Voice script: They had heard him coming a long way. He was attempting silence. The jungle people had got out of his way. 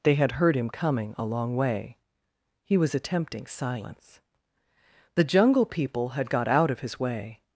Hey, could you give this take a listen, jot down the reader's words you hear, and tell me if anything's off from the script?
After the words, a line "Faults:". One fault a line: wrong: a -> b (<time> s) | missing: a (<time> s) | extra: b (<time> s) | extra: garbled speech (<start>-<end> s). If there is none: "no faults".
They had heard him coming a long way. He was attempting silence. The jungle people had got out of his way.
Faults:
no faults